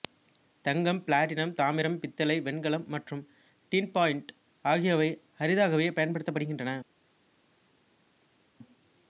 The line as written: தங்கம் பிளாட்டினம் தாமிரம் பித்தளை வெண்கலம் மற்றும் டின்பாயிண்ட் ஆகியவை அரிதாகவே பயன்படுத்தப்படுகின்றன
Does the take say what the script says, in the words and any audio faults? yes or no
yes